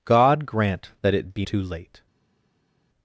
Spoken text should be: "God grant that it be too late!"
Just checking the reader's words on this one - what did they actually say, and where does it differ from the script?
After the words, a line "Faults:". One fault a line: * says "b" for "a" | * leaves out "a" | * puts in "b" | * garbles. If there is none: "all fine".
"God grant that it be too late!"
Faults:
all fine